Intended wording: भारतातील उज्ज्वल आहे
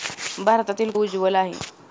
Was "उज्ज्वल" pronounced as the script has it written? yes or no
yes